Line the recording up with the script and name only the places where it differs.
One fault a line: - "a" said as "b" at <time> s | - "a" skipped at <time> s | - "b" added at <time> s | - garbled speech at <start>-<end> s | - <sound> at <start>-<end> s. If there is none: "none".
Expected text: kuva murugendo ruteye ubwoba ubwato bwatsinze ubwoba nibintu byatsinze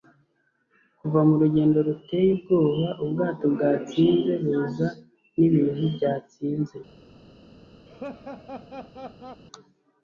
- "ubwoba" said as "buza" at 4.4 s
- laugh at 7.9-9.4 s